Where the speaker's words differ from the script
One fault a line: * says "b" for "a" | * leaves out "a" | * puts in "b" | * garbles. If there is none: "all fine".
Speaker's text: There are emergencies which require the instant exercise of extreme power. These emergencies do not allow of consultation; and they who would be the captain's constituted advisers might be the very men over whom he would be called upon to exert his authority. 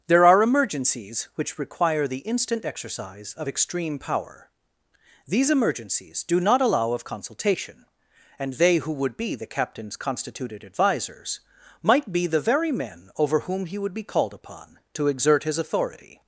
all fine